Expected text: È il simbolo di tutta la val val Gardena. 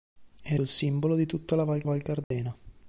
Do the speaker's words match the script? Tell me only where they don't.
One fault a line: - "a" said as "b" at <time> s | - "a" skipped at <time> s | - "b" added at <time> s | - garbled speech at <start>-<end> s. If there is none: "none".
none